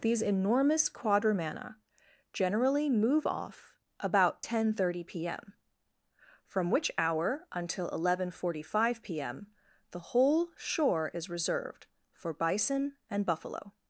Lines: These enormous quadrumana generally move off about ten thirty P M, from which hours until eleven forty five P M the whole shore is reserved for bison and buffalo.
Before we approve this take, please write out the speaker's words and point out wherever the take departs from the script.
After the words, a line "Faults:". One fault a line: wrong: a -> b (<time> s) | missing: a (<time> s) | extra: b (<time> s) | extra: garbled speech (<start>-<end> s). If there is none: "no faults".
These enormous quadrumana generally move off about ten thirty P M, from which hour until eleven forty five P M the whole shore is reserved for bison and buffalo.
Faults:
wrong: hours -> hour (7.0 s)